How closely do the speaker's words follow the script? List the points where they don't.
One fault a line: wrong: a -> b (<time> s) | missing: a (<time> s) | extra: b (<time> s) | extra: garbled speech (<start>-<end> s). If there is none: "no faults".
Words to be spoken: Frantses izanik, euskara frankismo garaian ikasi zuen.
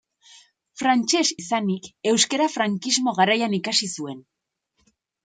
no faults